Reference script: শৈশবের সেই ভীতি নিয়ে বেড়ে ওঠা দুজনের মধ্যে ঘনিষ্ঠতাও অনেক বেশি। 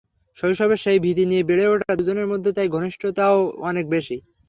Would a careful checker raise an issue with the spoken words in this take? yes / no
yes